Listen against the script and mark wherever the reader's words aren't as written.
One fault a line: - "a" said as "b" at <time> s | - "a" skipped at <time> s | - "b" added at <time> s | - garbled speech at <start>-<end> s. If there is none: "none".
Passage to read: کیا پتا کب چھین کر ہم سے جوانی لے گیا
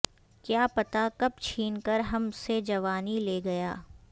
none